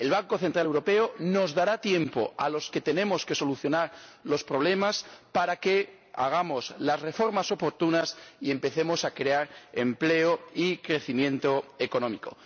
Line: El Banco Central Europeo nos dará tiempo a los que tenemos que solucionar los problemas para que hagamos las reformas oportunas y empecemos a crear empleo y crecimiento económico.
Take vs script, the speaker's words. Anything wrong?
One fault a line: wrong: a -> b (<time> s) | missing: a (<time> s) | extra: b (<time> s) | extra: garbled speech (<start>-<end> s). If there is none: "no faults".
no faults